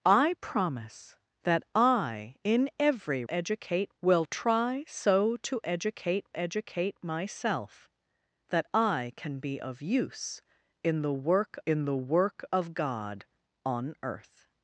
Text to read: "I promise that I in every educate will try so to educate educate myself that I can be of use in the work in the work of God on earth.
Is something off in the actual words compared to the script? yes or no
no